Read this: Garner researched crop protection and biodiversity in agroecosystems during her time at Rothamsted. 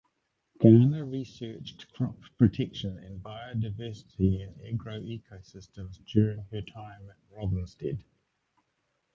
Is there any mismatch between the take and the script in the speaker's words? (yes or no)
no